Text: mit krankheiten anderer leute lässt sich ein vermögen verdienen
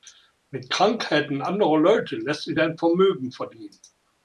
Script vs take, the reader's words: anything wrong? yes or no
no